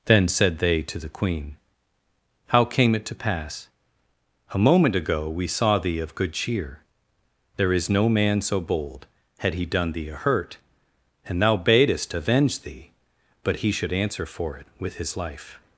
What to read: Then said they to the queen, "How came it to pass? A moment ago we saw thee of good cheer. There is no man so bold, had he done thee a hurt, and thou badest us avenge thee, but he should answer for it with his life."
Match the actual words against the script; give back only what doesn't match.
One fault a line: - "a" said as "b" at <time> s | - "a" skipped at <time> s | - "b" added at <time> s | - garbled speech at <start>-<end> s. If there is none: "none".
- "us" skipped at 12.1 s